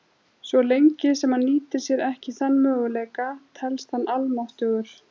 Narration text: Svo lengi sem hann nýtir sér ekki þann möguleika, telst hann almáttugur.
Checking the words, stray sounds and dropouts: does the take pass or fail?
pass